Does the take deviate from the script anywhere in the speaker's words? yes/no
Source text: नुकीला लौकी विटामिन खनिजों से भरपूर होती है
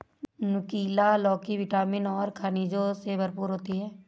yes